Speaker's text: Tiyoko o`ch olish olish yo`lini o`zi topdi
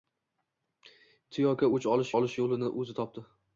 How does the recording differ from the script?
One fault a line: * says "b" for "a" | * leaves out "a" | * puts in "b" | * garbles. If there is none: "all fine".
all fine